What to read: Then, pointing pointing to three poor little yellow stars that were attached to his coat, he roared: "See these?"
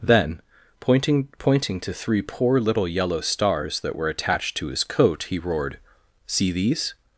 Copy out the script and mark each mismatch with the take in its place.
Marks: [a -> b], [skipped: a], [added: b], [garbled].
Then, pointing pointing to three poor little yellow stars that were attached to his coat, he roared: "See these?"